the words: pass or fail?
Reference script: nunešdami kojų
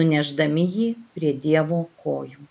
fail